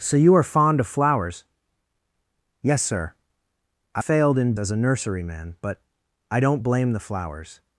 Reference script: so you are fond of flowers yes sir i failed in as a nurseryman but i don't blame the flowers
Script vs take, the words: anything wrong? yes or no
no